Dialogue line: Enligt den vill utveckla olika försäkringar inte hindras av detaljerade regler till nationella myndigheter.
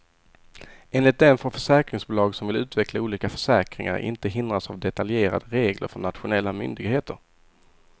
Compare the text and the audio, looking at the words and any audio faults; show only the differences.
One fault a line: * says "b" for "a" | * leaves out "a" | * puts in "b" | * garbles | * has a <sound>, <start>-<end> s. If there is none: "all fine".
* puts in "får försäkringsbolag som"
* says "från" for "till"